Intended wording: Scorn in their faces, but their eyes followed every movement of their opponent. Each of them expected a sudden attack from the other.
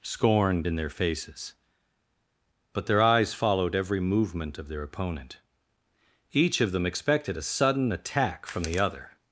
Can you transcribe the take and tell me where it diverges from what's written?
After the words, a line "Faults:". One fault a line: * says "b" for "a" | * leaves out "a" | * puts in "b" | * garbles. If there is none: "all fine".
Scorn in their faces, but their eyes followed every movement of their opponent. Each of them expected a sudden attack from the other.
Faults:
all fine